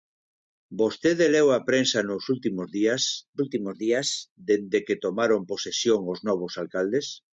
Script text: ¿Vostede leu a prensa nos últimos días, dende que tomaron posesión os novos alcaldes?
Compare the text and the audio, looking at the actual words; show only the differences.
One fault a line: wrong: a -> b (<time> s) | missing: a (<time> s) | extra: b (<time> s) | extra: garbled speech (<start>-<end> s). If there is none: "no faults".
extra: últimos días (3.4 s)